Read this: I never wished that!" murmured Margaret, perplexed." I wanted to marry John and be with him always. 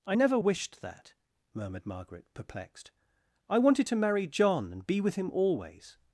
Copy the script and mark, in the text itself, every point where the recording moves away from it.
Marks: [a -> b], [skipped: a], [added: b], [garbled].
I never wished that!" murmured Margaret, perplexed." I wanted to marry John and be with him always.